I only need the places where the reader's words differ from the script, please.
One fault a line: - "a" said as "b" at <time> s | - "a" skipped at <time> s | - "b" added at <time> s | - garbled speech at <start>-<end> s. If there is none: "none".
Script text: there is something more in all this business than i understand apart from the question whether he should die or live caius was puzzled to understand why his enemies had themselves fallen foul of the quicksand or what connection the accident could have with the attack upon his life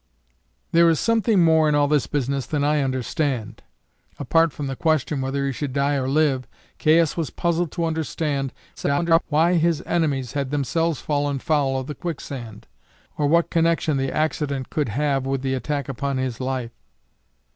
- garbled speech at 8.8-9.2 s